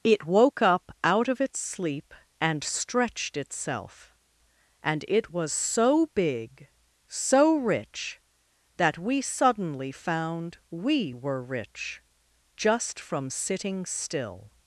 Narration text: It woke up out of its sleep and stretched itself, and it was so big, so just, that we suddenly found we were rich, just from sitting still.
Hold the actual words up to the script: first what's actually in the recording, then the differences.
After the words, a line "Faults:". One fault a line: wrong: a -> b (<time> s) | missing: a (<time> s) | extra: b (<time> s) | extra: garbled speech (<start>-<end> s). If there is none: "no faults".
It woke up out of its sleep and stretched itself, and it was so big, so rich, that we suddenly found we were rich, just from sitting still.
Faults:
wrong: just -> rich (7.5 s)